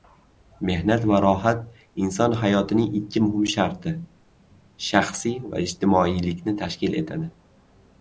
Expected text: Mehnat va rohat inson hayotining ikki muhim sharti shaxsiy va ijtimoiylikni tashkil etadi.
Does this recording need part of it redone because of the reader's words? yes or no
no